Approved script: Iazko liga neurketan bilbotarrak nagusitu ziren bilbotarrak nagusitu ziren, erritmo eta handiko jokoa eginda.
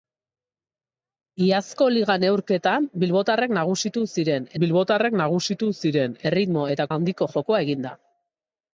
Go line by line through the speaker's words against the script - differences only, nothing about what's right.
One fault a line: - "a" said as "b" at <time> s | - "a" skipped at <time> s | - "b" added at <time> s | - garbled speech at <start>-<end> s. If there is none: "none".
none